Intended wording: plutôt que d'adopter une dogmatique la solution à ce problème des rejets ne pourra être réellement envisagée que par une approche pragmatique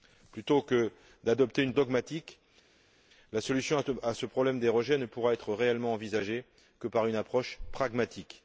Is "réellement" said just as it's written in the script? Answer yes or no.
yes